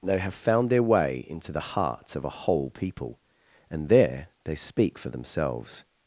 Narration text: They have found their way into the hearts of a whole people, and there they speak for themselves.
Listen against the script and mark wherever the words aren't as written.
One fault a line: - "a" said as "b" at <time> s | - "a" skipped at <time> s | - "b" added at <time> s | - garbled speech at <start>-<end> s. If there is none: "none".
none